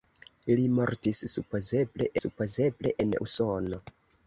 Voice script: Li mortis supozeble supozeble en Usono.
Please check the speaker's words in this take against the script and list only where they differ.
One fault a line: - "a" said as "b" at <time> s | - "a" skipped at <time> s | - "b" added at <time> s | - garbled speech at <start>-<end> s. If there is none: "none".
none